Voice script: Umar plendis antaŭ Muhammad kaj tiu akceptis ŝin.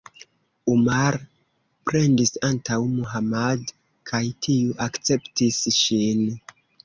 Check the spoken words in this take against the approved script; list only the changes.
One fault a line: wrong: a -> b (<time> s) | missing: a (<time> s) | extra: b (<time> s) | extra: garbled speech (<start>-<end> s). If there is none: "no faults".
no faults